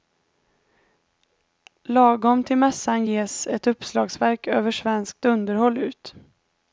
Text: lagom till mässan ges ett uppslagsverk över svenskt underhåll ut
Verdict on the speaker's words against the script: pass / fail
pass